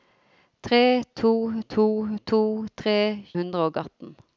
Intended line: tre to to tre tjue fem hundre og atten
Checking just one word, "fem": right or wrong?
wrong